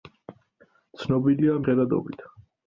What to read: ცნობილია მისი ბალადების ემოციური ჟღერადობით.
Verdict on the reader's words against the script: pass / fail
fail